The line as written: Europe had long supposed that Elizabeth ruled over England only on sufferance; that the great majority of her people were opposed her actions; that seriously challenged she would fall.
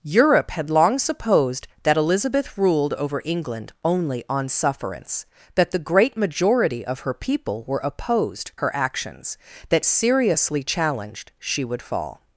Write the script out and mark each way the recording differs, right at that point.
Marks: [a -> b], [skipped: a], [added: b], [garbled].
Europe had long supposed that Elizabeth ruled over England only on sufferance; that the great majority of her people were opposed her actions; that seriously challenged she would fall.